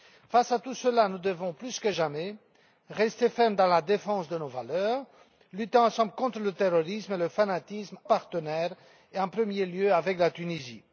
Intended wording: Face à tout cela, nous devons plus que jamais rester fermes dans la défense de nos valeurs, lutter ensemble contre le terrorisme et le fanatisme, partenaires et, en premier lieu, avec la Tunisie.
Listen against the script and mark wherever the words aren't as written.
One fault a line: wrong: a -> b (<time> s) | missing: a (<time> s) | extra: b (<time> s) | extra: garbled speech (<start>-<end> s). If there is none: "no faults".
no faults